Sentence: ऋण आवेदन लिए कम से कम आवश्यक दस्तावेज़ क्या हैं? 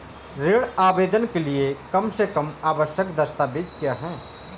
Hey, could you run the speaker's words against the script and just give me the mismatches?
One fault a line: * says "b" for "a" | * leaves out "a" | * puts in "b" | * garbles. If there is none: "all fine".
* puts in "के"